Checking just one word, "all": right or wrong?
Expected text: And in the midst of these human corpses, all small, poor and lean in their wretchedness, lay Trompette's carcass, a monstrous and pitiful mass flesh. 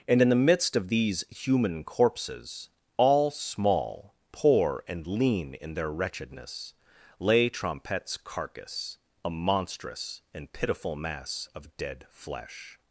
right